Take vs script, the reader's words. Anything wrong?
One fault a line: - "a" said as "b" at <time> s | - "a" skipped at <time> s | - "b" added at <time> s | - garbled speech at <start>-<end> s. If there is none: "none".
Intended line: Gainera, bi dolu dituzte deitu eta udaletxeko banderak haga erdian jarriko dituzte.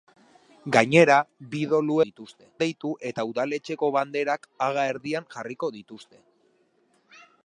none